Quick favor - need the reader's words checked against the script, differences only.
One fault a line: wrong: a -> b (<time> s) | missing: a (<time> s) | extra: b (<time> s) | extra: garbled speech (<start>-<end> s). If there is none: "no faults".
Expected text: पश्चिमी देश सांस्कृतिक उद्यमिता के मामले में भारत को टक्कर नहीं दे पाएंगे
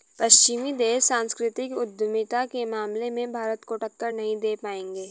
no faults